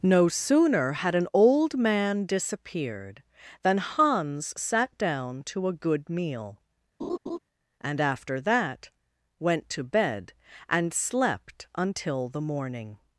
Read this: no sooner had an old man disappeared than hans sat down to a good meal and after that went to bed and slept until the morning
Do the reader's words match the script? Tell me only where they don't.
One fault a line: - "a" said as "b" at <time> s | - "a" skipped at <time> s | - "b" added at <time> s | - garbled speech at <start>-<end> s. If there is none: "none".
none